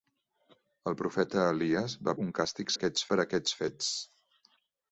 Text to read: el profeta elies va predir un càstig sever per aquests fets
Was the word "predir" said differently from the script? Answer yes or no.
yes